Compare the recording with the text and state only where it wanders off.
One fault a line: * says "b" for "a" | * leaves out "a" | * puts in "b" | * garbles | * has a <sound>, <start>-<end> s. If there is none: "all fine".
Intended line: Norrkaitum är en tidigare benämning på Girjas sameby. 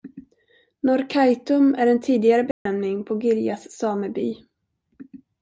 * has a dropout, 2.5-2.7 s